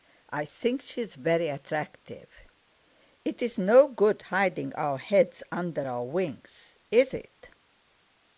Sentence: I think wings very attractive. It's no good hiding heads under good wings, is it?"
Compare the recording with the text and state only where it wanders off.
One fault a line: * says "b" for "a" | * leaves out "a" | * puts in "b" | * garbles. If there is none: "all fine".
* says "she's" for "wings"
* puts in "our"
* says "our" for "good"